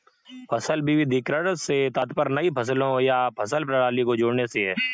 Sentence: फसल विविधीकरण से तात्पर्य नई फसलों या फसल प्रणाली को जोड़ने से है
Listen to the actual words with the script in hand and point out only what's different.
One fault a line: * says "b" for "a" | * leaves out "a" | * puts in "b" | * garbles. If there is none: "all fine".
all fine